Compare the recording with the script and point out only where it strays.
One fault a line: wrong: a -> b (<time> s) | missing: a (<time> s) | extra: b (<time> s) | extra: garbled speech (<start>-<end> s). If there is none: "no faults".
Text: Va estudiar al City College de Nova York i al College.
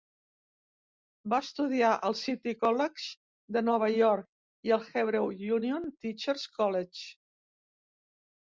extra: Hebrew Union Teachers (4.9 s)